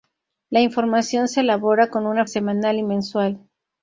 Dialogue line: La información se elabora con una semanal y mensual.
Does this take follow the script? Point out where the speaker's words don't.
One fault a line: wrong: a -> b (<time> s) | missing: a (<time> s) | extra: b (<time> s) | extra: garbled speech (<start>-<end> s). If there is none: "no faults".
no faults